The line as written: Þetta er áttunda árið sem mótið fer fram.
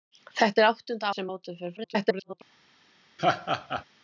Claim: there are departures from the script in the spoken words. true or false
true